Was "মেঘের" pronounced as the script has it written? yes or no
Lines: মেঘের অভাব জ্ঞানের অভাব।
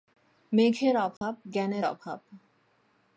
yes